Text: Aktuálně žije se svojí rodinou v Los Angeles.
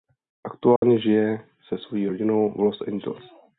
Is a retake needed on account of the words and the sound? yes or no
yes